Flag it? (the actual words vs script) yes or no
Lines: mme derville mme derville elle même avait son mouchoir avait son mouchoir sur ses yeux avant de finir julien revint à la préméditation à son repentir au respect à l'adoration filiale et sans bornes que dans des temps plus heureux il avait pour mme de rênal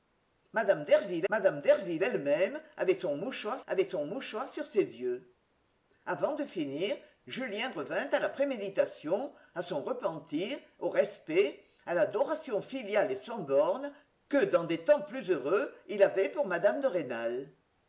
no